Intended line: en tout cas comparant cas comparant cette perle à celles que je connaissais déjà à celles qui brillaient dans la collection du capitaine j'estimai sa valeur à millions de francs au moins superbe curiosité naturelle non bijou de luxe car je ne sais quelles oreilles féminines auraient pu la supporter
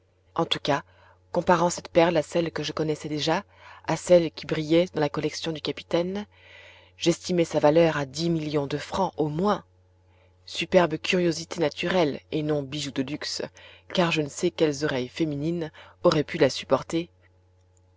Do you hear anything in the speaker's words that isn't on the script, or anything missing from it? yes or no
yes